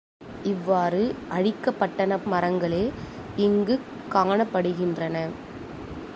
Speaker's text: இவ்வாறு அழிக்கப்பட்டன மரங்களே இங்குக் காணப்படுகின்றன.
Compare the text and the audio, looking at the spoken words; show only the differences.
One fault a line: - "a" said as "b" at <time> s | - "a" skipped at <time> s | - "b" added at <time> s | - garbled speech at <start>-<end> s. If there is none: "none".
none